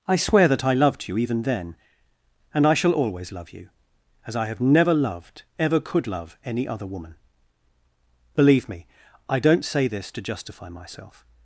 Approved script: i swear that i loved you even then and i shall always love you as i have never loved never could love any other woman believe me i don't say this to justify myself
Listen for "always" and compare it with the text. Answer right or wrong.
right